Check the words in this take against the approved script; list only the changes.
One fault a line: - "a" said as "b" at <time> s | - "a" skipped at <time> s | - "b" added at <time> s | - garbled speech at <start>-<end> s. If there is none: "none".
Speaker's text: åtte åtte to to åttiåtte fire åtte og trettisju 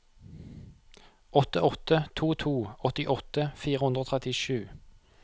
- "åtte" said as "hundre" at 3.9 s